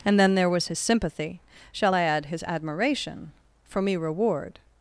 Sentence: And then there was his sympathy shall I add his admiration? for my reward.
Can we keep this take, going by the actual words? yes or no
no